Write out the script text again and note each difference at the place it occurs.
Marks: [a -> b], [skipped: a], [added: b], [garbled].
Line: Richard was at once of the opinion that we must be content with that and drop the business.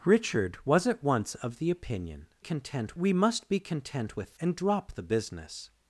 Richard was at once of the opinion [that -> content] we must be content with [skipped: that] and drop the business.